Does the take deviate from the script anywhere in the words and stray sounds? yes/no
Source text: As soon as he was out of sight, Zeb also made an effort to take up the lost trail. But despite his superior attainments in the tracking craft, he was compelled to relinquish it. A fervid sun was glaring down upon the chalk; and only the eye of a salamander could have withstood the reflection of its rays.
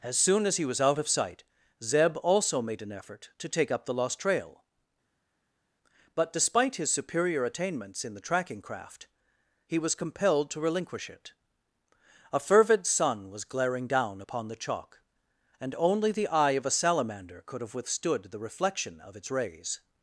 no